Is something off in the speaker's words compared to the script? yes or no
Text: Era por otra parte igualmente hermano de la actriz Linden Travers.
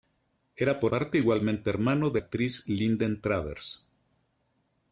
yes